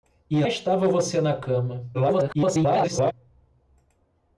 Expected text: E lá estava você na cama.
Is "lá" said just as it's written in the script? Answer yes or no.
no